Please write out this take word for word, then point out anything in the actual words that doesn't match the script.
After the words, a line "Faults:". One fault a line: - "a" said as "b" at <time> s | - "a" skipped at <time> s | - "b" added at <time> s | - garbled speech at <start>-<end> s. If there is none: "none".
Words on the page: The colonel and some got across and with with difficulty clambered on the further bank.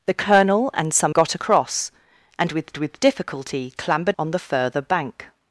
The colonel and some got across and with with difficulty clambered on the further bank.
Faults:
none